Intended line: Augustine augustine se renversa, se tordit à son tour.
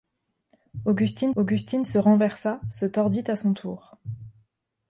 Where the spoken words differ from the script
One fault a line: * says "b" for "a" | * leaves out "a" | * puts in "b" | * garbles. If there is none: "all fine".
all fine